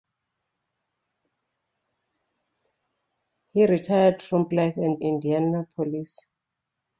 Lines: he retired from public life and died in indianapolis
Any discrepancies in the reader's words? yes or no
yes